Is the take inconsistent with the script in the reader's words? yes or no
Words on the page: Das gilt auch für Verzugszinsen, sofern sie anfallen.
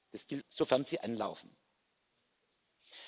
yes